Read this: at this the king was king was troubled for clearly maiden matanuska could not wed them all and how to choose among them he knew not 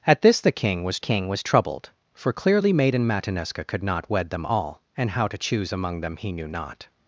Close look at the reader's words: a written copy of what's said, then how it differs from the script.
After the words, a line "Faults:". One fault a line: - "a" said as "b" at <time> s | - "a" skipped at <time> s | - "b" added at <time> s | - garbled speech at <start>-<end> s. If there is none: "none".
at this the king was king was troubled for clearly maiden matanuska could not wed them all and how to choose among them he knew not
Faults:
none